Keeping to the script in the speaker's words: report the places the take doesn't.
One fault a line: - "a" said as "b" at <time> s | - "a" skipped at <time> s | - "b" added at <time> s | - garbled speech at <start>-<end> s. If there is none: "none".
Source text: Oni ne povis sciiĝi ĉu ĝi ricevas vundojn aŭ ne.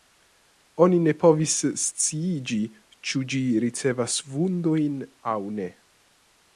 none